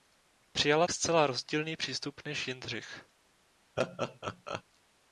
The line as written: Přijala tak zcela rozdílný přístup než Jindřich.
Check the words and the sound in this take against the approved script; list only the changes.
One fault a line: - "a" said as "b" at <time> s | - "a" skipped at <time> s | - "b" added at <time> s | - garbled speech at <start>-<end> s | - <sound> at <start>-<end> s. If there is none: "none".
- "tak" skipped at 0.9 s
- laugh at 3.8-4.6 s